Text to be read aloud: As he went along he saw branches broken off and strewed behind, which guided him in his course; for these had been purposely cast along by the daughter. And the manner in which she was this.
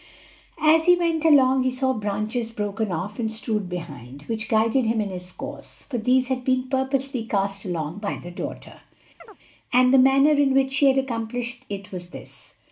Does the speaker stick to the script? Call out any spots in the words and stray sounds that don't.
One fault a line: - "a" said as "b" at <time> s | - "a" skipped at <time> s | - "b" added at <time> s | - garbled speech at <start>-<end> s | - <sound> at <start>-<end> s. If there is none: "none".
- chirp at 9.2-9.4 s
- "had accomplished it" added at 10.9 s